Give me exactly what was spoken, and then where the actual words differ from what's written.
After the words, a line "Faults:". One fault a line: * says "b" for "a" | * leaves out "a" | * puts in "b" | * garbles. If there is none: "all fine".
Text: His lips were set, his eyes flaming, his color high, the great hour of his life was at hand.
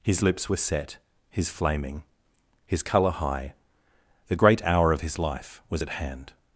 His lips were set, his flaming, his color high, the great hour of his life was at hand.
Faults:
* leaves out "eyes"